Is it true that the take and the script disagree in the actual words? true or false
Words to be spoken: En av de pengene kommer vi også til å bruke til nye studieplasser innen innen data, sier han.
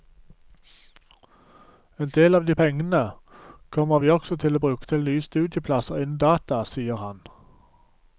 true